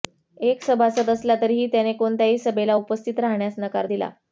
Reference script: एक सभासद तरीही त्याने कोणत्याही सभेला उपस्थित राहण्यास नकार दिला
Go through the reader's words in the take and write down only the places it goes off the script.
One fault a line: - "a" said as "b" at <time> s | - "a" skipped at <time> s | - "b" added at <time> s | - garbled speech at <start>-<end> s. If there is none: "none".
- "असला" added at 1.1 s